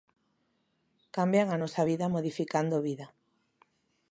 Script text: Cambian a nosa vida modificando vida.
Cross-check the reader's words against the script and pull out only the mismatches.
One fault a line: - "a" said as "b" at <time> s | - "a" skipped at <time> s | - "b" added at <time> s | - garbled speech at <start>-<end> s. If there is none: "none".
none